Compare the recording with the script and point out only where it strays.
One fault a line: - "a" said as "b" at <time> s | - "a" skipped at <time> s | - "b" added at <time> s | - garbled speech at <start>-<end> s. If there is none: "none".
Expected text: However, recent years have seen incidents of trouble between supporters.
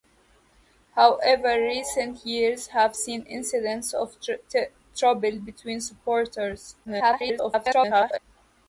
- garbled speech at 6.8-8.2 s